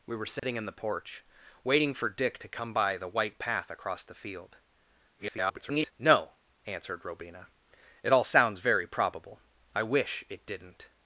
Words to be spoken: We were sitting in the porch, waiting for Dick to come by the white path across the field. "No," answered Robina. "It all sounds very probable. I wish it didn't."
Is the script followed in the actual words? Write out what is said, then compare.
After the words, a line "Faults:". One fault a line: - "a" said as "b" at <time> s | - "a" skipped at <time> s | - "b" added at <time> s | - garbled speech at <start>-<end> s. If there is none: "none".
We were sitting in the porch, waiting for Dick to come by the white path across the field. [garbled] "No," answered Robina. "It all sounds very probable. I wish it didn't."
Faults:
- garbled speech at 5.2-5.9 s